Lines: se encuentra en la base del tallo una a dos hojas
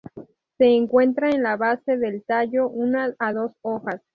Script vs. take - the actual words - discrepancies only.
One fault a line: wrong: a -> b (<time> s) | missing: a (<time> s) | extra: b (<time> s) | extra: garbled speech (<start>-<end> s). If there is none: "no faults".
no faults